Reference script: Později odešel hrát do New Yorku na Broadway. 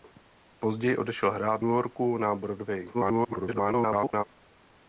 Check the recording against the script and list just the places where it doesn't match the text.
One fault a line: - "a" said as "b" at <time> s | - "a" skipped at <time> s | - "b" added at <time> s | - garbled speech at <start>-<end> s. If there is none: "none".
- "do New" skipped at 1.6 s
- garbled speech at 2.9-4.2 s